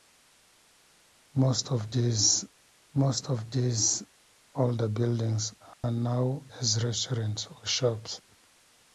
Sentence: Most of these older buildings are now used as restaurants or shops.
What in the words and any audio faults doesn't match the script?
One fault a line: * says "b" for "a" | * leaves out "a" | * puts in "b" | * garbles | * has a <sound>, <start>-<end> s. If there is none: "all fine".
* puts in "most of these"
* has a dropout, 5.7-5.8 s
* leaves out "used"